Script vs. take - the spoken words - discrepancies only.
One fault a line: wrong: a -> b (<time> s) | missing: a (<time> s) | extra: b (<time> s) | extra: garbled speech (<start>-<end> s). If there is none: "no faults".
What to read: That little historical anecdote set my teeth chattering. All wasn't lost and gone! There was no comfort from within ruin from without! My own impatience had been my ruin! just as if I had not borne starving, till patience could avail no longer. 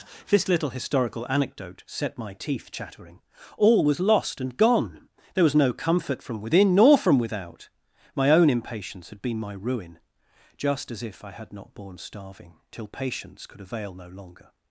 wrong: That -> This (0.3 s)
wrong: wasn't -> was (3.8 s)
wrong: ruin -> nor (6.8 s)